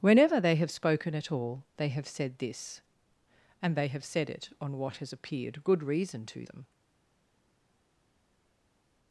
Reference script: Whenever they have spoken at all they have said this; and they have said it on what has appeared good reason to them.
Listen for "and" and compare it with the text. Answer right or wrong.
right